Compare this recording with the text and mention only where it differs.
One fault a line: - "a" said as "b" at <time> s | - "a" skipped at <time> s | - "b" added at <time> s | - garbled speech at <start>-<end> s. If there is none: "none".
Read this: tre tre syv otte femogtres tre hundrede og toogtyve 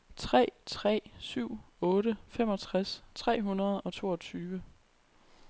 none